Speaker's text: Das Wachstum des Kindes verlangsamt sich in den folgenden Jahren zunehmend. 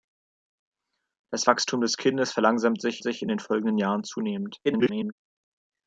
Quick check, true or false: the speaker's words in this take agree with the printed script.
false